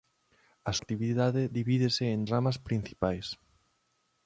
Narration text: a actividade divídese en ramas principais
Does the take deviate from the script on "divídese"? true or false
false